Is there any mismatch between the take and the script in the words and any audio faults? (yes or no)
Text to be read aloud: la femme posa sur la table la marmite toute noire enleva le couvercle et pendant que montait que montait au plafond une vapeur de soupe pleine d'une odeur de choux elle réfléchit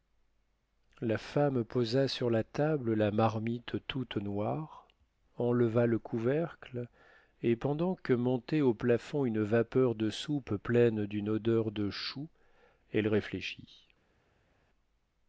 yes